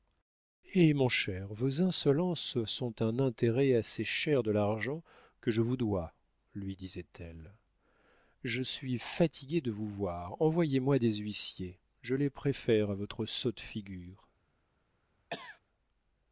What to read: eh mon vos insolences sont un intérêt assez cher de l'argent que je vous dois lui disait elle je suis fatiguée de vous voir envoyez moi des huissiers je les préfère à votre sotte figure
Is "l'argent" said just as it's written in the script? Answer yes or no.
yes